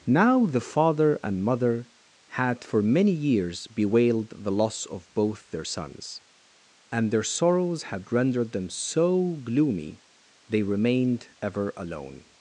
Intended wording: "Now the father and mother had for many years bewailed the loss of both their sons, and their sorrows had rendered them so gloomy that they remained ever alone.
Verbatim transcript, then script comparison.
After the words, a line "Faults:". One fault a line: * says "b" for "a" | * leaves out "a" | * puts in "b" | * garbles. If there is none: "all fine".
"Now the father and mother had for many years bewailed the loss of both their sons, and their sorrows had rendered them so gloomy they remained ever alone.
Faults:
* leaves out "that"